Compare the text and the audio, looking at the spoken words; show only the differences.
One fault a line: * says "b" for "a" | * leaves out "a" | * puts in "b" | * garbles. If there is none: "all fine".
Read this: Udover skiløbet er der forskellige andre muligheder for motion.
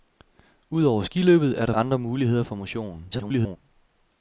* leaves out "forskellige"
* garbles